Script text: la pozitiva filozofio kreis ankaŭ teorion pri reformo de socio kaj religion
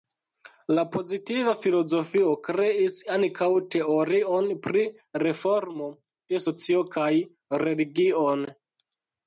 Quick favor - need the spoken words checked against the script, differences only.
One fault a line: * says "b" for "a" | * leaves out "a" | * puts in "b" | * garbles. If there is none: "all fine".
all fine